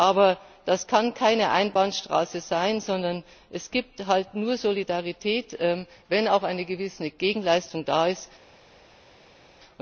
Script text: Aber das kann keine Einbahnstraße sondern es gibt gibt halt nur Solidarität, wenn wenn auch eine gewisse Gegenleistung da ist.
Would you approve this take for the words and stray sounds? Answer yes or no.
no